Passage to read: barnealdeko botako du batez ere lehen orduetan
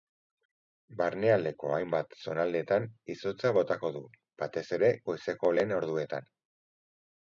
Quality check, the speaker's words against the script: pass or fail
fail